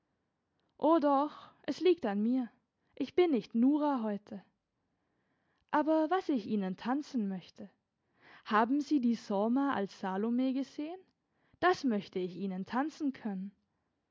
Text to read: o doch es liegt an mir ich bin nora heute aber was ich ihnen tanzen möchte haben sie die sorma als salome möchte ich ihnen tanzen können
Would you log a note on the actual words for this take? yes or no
yes